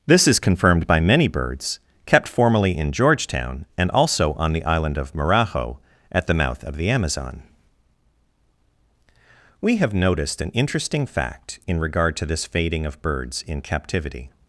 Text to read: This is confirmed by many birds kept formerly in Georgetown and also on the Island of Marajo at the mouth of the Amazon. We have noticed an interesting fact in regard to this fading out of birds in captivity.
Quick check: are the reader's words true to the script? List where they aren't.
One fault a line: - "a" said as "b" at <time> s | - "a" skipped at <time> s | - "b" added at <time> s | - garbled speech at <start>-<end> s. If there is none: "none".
- "out" skipped at 12.9 s